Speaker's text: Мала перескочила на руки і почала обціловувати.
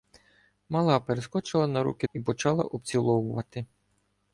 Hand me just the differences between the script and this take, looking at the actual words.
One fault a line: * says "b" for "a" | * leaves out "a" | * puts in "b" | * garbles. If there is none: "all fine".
all fine